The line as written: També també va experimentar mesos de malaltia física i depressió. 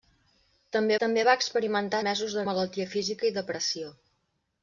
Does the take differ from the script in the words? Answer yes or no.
no